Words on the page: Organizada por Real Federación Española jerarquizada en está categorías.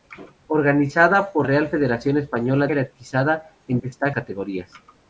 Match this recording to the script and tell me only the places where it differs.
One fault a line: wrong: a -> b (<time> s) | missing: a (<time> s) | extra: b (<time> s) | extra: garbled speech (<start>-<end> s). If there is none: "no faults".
no faults